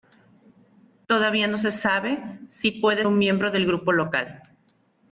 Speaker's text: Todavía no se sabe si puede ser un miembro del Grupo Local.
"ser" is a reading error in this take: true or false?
true